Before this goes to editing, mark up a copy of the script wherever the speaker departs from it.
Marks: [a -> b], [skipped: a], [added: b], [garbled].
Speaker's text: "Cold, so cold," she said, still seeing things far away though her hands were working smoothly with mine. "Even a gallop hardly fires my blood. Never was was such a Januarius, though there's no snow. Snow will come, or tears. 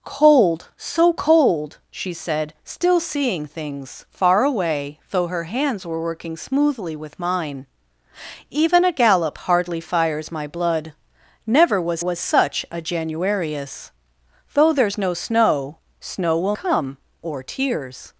"Cold, so cold," she said, still seeing things far away though her hands were working smoothly with mine. "Even a gallop hardly fires my blood. Never was was such a Januarius, though there's no snow. Snow will come, or tears.